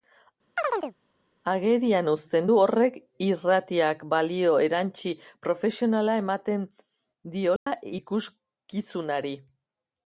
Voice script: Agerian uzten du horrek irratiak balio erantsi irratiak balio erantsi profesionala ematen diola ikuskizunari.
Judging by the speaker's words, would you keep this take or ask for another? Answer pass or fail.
fail